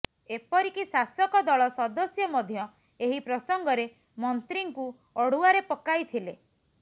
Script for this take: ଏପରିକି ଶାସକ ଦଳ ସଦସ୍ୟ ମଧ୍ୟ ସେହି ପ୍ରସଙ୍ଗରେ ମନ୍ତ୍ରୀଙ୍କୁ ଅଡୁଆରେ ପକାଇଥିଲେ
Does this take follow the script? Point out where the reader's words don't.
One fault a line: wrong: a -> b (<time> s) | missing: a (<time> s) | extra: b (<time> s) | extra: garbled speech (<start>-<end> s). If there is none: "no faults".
wrong: ସେହି -> ଏହି (3.0 s)